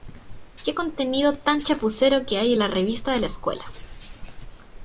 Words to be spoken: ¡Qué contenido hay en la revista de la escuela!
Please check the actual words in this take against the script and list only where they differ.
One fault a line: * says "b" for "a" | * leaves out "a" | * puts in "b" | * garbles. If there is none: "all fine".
* puts in "tan chapucero que"